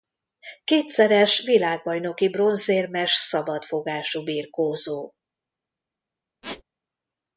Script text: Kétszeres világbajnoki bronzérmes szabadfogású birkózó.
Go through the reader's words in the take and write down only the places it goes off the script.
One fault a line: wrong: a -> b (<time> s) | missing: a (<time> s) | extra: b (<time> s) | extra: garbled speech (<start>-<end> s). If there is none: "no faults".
no faults